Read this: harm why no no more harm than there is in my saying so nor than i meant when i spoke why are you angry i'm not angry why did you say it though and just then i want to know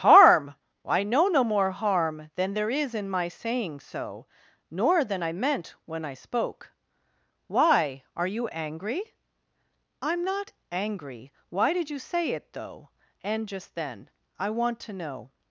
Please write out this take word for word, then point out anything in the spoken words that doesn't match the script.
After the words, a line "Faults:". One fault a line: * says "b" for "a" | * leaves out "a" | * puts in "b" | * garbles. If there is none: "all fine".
harm i know no more harm than there is in my saying so nor than i meant when i spoke why are you angry i'm not angry why did you say it though and just then i want to know
Faults:
* says "i know" for "why no"